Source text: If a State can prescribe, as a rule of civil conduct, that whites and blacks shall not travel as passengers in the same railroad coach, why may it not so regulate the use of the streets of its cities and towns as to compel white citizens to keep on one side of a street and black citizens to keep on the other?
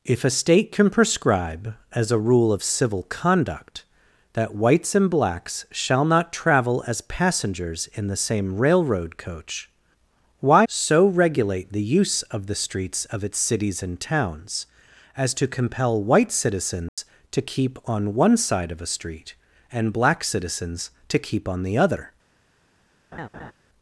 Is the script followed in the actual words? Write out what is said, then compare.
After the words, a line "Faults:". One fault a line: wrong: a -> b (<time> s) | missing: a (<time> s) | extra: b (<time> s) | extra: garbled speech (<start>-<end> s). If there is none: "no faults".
If a State can prescribe, as a rule of civil conduct, that whites and blacks shall not travel as passengers in the same railroad coach, why so regulate the use of the streets of its cities and towns as to compel white citizens to keep on one side of a street and black citizens to keep on the other?
Faults:
missing: may it not (10.7 s)